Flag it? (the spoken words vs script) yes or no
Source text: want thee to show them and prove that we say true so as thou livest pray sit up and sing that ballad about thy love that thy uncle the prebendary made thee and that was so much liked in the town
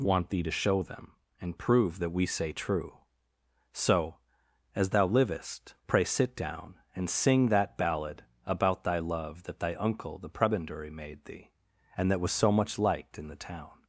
yes